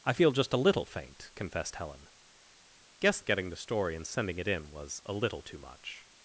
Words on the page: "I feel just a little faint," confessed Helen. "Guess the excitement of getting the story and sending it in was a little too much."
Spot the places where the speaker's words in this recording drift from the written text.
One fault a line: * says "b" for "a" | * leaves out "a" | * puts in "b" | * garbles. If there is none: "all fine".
* leaves out "the excitement"